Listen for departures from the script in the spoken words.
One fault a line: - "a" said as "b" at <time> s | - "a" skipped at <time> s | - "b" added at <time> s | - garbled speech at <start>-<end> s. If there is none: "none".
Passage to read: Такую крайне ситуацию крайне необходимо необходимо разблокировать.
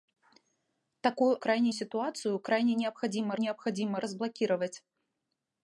none